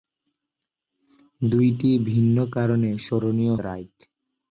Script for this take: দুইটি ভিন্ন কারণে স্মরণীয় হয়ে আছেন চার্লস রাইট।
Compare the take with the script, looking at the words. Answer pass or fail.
fail